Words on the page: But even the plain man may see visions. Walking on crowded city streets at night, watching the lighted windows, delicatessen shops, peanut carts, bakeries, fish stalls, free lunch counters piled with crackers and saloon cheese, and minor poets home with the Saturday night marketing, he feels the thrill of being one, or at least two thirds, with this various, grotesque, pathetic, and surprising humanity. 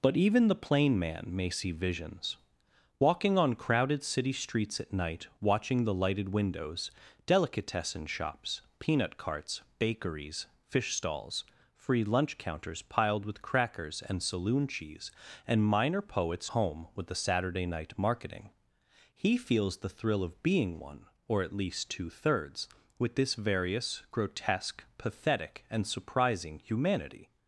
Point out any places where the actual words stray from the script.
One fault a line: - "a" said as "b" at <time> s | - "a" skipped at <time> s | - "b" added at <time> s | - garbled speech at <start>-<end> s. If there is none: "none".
none